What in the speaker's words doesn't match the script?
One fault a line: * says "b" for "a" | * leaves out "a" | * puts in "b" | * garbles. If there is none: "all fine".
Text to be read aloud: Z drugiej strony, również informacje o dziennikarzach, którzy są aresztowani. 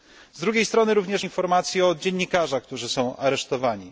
all fine